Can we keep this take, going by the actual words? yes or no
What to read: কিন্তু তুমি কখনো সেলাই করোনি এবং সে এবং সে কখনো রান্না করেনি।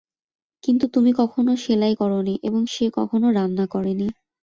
no